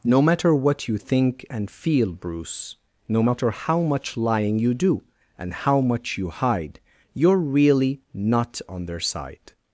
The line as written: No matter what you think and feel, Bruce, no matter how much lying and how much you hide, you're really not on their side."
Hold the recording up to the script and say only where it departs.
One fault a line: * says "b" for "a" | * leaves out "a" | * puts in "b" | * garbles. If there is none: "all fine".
* puts in "you do"